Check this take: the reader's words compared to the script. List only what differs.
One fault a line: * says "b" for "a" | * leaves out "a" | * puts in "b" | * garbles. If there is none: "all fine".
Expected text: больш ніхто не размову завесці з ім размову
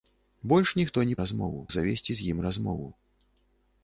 all fine